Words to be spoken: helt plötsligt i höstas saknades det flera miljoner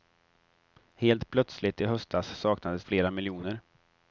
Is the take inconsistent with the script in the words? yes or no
yes